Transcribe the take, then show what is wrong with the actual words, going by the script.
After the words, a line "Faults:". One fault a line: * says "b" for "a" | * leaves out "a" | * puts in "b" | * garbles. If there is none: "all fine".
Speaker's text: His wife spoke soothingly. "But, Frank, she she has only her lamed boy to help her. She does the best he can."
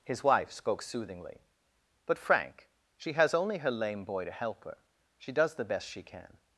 His wife spoke soothingly. "But, Frank, she has only her lame boy to help her. She does the best she can."
Faults:
* leaves out "she"
* says "lame" for "lamed"
* says "she" for "he"